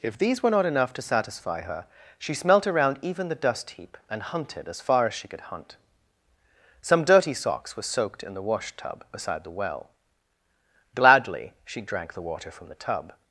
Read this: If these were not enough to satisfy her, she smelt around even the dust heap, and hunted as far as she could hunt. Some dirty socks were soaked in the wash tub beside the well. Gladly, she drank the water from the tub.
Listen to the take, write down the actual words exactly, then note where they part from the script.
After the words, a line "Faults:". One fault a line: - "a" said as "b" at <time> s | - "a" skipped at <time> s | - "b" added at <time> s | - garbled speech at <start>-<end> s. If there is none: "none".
If these were not enough to satisfy her, she smelt around even the dust heap, and hunted as far as she could hunt. Some dirty socks were soaked in the wash tub beside the well. Gladly, she drank the water from the tub.
Faults:
none